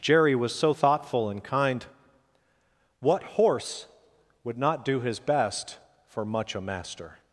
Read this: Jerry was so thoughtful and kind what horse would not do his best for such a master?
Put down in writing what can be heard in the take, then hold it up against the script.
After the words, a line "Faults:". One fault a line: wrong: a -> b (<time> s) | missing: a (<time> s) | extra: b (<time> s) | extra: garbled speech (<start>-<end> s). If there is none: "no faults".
Jerry was so thoughtful and kind what horse would not do his best for much a master?
Faults:
wrong: such -> much (6.2 s)